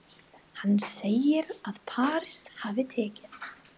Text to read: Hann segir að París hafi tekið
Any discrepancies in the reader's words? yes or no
no